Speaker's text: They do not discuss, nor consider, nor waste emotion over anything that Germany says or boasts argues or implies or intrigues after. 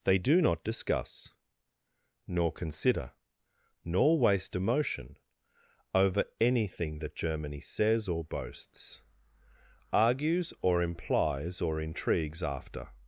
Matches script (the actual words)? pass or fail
pass